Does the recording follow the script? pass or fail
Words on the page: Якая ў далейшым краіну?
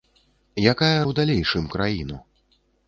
pass